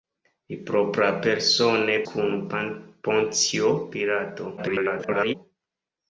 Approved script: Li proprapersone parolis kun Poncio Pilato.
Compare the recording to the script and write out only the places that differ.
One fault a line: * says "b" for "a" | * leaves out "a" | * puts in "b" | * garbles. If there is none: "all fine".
* leaves out "parolis"
* garbles